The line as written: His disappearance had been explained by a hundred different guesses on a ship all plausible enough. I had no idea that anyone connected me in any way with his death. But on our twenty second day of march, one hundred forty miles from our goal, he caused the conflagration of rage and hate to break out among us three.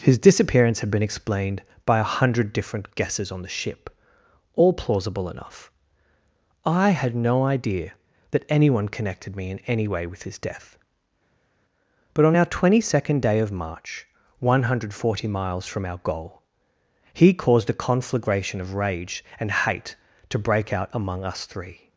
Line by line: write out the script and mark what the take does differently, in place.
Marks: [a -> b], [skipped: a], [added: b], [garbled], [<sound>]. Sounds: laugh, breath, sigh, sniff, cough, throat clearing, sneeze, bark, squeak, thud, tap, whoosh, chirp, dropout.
His disappearance had been explained by a hundred different guesses on [a -> the] ship all plausible enough. I had no idea that anyone connected me in any way with his death. But on our twenty second day of march, one hundred forty miles from our goal, he caused [the -> a] conflagration of rage and hate to break out among us three.